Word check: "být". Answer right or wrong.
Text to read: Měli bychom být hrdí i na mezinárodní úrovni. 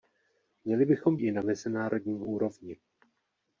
wrong